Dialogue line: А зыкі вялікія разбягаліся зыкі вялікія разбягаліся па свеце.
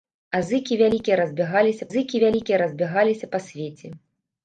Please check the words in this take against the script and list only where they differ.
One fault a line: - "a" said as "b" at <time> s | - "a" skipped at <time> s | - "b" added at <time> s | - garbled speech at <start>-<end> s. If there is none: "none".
none